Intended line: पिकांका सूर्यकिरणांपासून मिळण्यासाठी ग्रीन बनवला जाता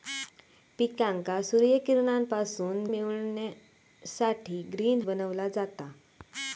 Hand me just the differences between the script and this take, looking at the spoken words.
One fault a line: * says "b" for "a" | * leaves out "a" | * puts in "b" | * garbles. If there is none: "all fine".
all fine